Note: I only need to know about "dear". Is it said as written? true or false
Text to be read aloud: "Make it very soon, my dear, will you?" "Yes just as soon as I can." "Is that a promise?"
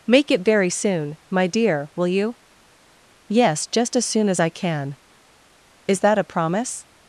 true